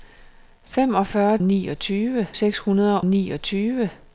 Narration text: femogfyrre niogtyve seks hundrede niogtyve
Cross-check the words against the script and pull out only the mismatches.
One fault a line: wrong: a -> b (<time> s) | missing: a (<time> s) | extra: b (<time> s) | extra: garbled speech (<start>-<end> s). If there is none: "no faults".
no faults